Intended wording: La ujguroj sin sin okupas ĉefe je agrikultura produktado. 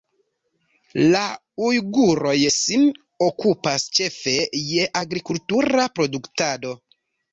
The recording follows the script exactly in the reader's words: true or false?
false